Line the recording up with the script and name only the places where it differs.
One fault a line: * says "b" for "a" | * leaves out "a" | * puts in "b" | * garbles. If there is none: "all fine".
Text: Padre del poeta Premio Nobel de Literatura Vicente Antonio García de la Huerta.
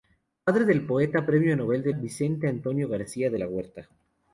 * leaves out "Literatura"